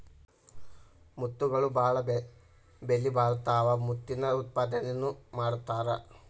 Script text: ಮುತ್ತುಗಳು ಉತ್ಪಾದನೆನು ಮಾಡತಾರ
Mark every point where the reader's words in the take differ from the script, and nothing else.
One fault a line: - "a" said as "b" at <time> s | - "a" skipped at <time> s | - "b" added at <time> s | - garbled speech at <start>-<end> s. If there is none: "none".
- "ಬಾಳ ಬೆಲಿಬಾಳತಾವ ಮುತ್ತಿನ" added at 1.7 s